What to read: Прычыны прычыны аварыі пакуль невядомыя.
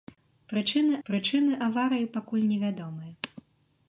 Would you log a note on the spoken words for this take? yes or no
no